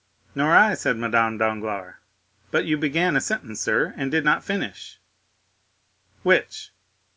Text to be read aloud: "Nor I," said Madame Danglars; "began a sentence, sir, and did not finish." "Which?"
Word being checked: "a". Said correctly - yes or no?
yes